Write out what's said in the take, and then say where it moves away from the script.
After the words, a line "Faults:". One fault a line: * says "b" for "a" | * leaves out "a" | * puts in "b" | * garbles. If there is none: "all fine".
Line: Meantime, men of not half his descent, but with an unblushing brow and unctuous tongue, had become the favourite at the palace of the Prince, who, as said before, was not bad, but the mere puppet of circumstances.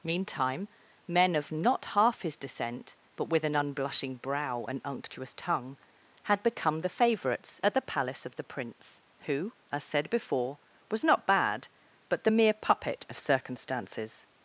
Meantime, men of not half his descent, but with an unblushing brow and unctuous tongue, had become the favourites at the palace of the Prince, who, as said before, was not bad, but the mere puppet of circumstances.
Faults:
* says "favourites" for "favourite"